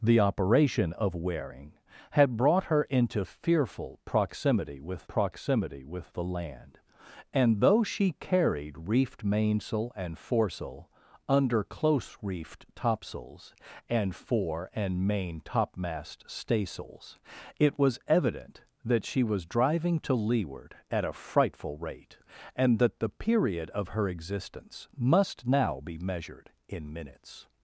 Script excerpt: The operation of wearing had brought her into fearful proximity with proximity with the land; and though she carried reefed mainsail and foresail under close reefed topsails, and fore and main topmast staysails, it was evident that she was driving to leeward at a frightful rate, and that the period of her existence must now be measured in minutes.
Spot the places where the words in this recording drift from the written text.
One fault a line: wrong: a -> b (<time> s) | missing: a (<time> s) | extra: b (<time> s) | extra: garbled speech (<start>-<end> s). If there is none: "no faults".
no faults